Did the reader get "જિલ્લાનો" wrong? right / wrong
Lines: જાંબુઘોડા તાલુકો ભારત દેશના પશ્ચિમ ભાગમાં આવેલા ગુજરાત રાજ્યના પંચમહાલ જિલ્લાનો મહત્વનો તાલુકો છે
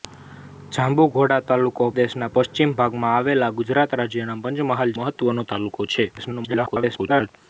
wrong